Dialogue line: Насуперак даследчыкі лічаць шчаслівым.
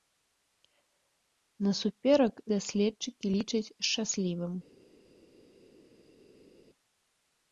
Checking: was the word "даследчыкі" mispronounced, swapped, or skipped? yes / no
no